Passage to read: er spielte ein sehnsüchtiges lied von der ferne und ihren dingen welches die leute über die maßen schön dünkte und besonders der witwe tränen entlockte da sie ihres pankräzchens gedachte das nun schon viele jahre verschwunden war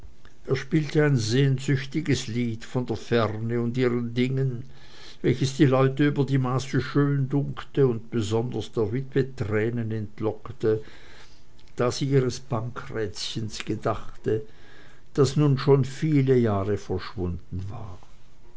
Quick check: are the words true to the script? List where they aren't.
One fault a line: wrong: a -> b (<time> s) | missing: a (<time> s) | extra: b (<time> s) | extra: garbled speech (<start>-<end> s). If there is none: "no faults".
no faults